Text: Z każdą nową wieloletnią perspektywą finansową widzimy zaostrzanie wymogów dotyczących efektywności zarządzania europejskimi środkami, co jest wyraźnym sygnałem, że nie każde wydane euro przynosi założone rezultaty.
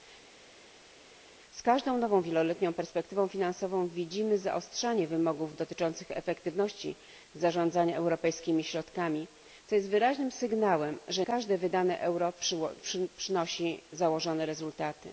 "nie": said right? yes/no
no